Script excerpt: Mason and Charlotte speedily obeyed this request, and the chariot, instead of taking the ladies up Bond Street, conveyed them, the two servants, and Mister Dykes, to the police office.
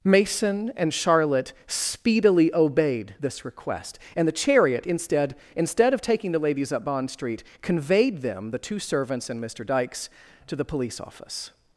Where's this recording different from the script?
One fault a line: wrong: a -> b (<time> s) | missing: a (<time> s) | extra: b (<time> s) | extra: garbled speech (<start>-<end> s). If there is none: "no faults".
extra: instead (5.6 s)